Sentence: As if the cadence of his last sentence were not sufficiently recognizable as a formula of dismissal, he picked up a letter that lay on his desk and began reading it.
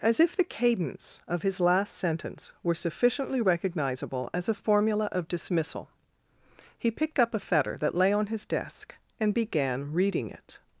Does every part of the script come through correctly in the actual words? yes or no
no